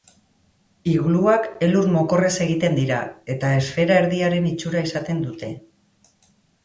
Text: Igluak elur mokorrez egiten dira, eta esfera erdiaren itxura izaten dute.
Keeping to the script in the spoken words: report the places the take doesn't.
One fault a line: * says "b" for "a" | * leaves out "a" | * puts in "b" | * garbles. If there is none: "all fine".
all fine